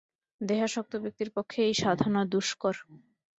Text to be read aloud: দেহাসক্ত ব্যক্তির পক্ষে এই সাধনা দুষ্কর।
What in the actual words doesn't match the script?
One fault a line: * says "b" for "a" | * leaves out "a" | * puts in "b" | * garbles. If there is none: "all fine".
all fine